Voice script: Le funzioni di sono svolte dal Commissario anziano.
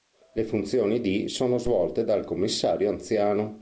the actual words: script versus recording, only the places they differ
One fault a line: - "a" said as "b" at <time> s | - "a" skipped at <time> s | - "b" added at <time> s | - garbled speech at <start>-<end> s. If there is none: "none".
none